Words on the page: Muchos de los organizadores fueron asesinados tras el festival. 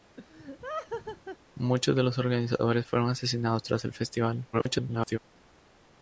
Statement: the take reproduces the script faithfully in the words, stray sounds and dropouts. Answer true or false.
false